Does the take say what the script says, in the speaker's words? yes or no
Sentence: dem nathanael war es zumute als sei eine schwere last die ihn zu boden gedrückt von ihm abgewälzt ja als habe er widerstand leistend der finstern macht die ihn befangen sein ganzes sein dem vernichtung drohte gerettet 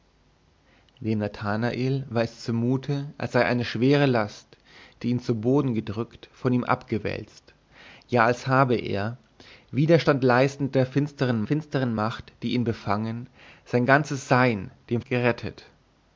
no